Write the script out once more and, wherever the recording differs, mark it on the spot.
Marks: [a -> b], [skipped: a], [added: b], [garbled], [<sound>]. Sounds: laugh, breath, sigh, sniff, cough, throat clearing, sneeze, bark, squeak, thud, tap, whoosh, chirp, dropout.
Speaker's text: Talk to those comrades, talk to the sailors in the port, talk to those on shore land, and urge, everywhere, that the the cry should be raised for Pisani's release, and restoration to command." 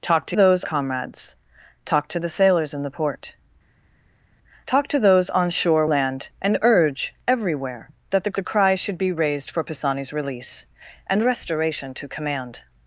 Talk to those comrades, talk to the sailors in the port, talk to those on shore land, and urge, everywhere, that the the cry should be raised for Pisani's release, and restoration to command."